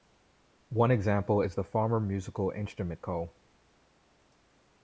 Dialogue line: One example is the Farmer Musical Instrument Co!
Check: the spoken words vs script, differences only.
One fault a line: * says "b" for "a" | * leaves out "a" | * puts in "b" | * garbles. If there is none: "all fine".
all fine